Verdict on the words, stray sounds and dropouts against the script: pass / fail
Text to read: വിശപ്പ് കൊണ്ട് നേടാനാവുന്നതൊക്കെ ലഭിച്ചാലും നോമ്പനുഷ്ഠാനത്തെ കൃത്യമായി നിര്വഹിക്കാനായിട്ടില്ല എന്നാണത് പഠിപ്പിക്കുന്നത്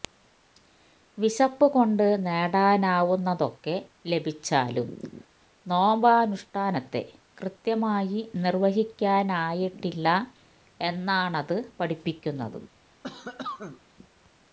fail